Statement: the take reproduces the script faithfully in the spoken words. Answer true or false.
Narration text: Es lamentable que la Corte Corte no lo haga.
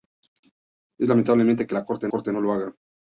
true